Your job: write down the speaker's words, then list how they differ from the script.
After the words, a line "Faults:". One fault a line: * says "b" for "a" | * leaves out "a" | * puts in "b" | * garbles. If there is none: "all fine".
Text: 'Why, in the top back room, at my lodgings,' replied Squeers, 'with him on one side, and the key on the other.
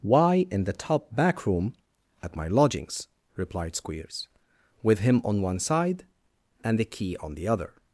'Why, in the top back room, at my lodgings,' replied Squeers, 'with him on one side, and the key on the other.
Faults:
all fine